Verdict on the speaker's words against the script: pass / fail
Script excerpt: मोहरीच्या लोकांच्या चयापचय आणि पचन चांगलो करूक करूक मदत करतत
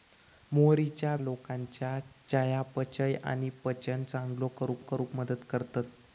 pass